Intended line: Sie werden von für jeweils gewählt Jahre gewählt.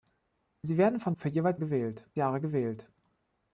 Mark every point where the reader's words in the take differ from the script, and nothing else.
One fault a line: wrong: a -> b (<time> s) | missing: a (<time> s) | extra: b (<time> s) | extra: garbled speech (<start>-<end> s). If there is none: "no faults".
no faults